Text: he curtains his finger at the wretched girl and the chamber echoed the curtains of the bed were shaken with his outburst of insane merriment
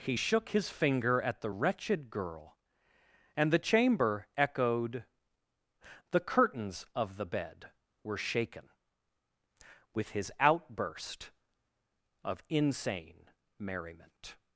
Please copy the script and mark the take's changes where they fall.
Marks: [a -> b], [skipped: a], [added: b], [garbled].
he [curtains -> shook] his finger at the wretched girl and the chamber echoed the curtains of the bed were shaken with his outburst of insane merriment